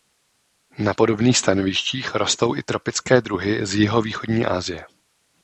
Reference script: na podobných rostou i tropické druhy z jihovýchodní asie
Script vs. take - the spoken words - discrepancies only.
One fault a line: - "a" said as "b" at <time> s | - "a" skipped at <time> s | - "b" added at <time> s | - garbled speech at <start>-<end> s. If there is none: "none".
- "stanovištích" added at 1.4 s